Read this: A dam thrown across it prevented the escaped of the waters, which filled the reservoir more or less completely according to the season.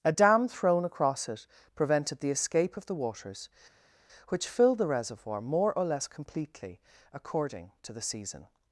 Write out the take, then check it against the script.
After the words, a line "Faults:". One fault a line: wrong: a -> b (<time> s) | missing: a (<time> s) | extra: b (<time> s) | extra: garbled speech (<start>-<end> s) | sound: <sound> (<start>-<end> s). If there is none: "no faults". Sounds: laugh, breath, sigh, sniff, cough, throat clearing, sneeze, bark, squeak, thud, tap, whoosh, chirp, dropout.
A dam thrown across it prevented the escape of the waters, which filled the reservoir more or less completely according to the season.
Faults:
wrong: escaped -> escape (2.3 s)